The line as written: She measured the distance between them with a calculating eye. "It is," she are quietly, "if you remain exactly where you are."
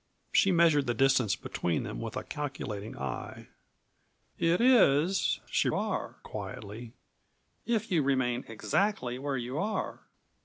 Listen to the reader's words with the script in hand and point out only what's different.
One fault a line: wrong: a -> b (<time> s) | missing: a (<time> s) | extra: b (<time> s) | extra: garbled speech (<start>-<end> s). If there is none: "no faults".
no faults